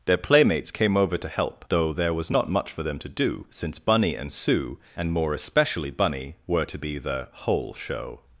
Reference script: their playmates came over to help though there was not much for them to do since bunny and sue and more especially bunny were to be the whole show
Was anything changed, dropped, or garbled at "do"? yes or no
no